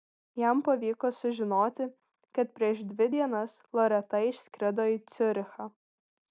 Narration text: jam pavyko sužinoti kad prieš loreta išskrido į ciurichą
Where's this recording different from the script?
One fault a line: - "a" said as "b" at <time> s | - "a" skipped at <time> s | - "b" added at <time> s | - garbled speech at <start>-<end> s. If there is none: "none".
- "dvi dienas" added at 2.9 s